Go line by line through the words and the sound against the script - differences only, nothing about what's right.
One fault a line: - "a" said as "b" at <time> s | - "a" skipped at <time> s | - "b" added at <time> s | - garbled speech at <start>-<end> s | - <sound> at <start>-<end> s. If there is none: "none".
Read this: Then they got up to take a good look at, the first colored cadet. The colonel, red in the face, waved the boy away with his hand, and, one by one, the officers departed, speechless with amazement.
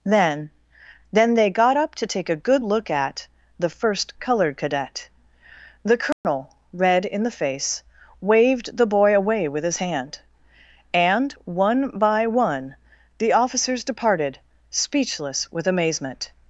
- "then" added at 1.1 s
- dropout at 6.1-6.2 s